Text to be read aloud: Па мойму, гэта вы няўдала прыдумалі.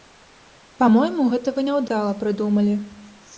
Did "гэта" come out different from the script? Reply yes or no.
no